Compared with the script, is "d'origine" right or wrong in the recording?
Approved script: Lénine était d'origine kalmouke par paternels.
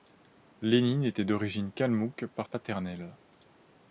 right